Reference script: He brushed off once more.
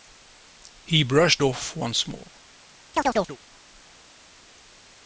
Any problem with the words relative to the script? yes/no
no